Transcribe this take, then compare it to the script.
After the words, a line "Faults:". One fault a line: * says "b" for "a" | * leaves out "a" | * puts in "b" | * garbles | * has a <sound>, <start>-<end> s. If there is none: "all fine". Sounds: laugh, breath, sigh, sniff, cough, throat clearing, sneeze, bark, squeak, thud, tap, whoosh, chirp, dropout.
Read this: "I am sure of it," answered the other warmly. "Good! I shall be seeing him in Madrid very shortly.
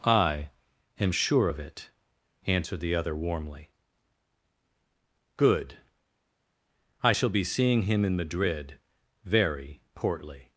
"I am sure of it," answered the other warmly. "Good! I shall be seeing him in Madrid very portly.
Faults:
* says "portly" for "shortly"